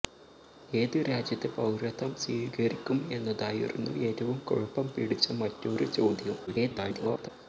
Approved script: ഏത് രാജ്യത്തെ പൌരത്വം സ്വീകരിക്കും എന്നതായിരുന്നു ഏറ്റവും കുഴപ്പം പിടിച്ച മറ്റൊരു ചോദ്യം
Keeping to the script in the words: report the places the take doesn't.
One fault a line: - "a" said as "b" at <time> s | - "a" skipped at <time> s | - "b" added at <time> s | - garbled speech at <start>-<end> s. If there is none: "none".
- garbled speech at 6.5-7.3 s